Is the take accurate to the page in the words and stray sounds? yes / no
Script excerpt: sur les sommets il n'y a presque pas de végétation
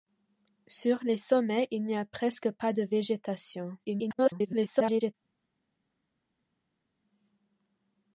no